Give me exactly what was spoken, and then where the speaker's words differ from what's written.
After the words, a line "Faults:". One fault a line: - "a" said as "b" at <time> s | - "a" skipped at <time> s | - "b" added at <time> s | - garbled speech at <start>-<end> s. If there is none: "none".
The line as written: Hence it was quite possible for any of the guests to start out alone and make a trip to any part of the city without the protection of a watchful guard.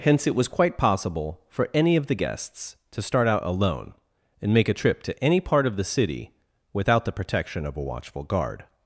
Hence it was quite possible for any of the guests to start out alone and make a trip to any part of the city without the protection of a watchful guard.
Faults:
none